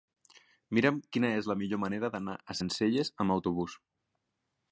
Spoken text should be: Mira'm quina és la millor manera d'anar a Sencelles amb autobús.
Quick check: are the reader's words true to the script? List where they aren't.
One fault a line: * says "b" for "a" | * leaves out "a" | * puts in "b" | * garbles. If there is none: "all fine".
all fine